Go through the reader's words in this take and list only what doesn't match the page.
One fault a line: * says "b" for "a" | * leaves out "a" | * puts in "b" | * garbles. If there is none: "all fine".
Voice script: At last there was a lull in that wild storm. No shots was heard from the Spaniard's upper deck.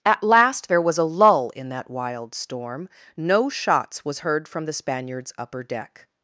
all fine